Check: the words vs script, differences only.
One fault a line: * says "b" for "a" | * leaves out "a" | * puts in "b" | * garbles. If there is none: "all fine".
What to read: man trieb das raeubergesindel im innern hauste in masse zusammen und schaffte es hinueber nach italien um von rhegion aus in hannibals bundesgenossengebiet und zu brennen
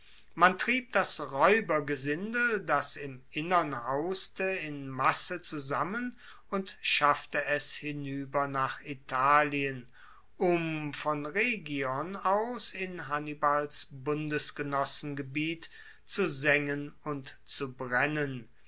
* puts in "das"
* puts in "zu sengen"